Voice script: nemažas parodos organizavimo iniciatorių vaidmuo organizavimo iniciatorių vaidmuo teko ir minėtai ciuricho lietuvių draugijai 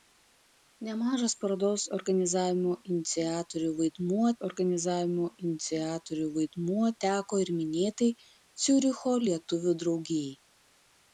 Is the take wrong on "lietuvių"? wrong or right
right